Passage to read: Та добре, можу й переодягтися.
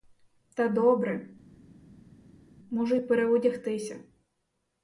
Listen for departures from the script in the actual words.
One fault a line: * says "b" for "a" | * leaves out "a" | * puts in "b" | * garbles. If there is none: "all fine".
all fine